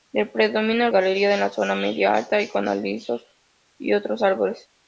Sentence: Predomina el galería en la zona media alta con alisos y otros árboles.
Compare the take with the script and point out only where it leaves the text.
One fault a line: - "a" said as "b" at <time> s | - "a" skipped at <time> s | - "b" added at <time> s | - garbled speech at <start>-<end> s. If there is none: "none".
none